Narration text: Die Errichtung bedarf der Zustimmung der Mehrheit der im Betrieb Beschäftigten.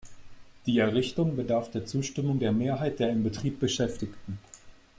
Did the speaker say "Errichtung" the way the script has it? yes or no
yes